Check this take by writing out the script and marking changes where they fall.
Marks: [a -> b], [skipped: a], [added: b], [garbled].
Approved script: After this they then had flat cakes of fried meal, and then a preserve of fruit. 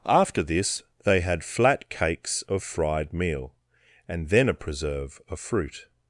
After this they [skipped: then] had flat cakes of fried meal, and then a preserve of fruit.